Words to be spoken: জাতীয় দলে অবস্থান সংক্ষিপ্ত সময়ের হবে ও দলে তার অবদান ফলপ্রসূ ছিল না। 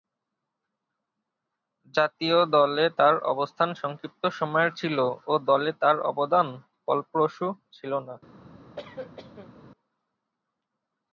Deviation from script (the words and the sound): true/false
true